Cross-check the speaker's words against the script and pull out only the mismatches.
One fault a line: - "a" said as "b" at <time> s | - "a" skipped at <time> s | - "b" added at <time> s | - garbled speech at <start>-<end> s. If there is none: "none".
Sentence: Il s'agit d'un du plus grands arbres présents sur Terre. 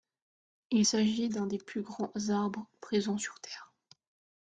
- "du" said as "des" at 1.5 s